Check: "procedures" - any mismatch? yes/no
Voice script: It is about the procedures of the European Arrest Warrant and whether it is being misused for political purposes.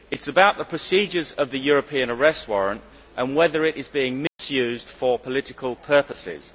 no